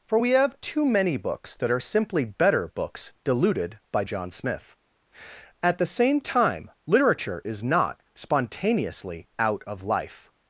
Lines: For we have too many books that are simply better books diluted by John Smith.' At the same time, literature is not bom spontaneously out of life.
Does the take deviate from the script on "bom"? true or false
true